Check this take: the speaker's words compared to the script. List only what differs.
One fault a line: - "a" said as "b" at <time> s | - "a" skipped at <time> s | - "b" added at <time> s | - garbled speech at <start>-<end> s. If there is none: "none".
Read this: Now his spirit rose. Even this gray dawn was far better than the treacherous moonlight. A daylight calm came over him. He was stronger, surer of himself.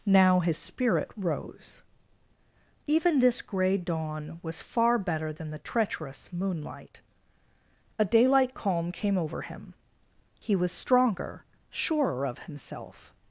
none